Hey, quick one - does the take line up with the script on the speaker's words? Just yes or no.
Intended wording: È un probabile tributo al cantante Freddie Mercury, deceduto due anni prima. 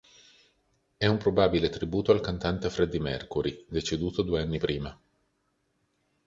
yes